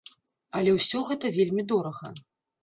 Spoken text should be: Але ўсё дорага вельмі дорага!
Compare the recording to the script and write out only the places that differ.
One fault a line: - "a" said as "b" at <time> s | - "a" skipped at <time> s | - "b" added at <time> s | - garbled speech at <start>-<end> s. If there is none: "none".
- "дорага" said as "гэта" at 1.1 s